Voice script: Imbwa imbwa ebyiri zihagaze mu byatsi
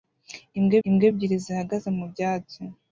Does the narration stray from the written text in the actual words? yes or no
no